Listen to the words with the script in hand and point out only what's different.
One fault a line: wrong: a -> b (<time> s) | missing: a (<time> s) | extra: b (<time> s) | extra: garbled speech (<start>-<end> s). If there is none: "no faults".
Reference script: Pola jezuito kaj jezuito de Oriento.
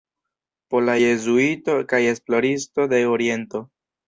wrong: jezuito -> esploristo (2.1 s)